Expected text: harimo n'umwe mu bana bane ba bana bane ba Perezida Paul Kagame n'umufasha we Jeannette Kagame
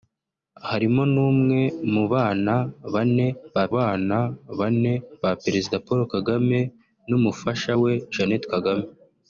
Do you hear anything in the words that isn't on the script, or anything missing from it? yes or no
no